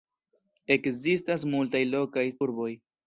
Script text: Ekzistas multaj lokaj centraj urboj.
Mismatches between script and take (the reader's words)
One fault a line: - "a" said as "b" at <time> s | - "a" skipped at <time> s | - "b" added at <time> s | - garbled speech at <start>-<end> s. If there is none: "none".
- "centraj" skipped at 2.3 s